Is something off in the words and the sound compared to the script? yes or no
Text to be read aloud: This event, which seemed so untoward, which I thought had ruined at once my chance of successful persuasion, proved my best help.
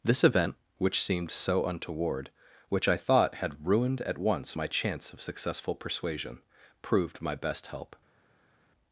no